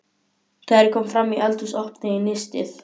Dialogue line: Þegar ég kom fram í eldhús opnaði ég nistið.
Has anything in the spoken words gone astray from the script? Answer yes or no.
no